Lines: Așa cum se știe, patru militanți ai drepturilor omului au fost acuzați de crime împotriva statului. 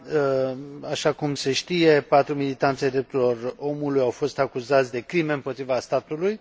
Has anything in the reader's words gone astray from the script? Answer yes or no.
no